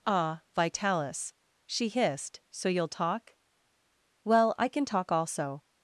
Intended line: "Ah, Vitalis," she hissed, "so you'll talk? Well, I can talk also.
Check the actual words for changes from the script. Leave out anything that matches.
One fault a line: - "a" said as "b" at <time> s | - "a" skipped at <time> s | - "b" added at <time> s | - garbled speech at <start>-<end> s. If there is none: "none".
none